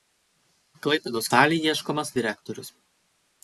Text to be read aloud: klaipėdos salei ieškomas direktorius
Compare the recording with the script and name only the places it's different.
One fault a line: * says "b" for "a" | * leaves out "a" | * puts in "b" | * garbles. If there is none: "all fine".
all fine